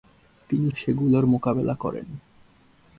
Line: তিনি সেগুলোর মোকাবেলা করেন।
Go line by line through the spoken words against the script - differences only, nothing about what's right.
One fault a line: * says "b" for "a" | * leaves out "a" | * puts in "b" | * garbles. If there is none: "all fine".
all fine